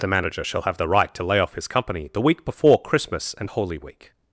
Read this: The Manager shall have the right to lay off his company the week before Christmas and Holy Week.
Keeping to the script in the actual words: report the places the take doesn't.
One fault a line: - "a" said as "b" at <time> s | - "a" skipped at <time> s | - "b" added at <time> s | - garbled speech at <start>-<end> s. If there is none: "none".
none